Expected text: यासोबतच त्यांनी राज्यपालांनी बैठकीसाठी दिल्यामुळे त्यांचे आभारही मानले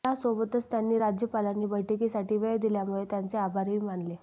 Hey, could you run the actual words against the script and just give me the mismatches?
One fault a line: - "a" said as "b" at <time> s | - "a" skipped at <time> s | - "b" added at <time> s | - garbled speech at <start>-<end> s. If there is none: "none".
- "वेळ" added at 2.4 s